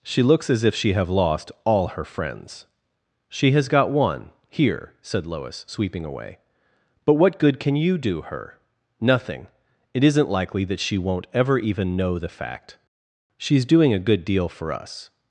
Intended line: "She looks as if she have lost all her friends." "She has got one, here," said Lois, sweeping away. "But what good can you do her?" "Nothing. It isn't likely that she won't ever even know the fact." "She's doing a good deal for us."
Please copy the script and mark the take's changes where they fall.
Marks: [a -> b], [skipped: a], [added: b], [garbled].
"She looks as if she have lost all her friends." "She has got one, here," said Lois, sweeping away. "But what good can you do her?" "Nothing. It isn't likely that she won't ever even know the fact." "She's doing a good deal for us."